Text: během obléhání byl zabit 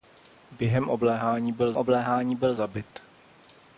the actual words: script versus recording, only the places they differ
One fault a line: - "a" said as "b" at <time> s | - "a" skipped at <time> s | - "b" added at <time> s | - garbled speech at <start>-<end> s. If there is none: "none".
- "obléhání byl" added at 1.8 s